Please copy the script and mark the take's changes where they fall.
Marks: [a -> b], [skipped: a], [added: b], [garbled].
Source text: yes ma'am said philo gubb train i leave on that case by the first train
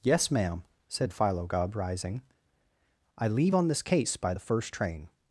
yes ma'am said philo gubb [train -> rising] i leave on [that -> this] case by the first train